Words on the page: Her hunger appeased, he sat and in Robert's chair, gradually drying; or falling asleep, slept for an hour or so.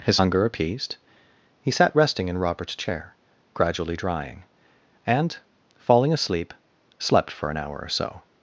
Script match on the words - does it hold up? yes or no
no